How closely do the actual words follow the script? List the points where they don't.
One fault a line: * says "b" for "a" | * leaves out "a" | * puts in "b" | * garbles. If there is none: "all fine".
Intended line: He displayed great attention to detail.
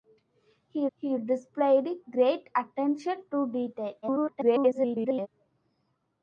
* puts in "he"
* garbles